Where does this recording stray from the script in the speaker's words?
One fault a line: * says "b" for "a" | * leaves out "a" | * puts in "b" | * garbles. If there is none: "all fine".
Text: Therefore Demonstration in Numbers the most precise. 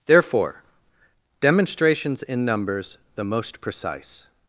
* says "Demonstrations" for "Demonstration"